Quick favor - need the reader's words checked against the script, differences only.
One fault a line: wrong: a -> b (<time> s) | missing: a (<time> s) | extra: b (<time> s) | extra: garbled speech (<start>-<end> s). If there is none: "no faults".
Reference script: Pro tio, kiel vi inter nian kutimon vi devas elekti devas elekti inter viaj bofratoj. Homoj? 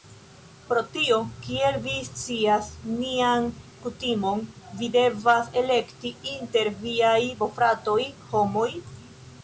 wrong: inter -> scias (2.1 s)
missing: devas elekti (6.2 s)